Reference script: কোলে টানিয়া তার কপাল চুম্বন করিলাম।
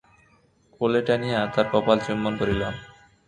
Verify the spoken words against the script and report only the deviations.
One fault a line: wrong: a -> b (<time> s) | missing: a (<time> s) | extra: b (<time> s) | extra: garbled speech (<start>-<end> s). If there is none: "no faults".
no faults